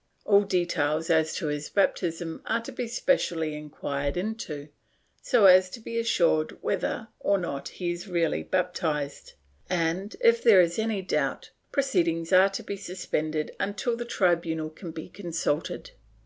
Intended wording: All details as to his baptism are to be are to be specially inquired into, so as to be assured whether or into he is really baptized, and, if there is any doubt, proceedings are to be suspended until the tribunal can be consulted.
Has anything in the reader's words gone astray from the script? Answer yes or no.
yes